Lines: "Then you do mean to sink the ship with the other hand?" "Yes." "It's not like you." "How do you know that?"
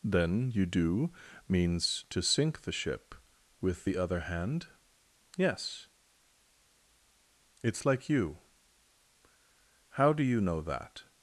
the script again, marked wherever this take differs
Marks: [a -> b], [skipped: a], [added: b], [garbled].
"Then you do [mean -> means] to sink the ship with the other hand?" "Yes." "It's [skipped: not] like you." "How do you know that?"